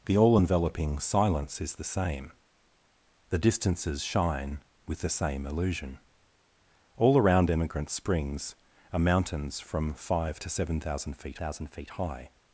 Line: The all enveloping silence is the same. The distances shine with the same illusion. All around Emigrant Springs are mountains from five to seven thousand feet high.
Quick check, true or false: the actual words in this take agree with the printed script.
false